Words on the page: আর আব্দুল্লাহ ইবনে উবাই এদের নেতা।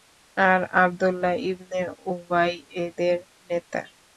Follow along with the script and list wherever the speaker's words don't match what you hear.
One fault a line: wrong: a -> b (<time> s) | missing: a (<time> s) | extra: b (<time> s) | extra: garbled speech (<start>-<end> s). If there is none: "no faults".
no faults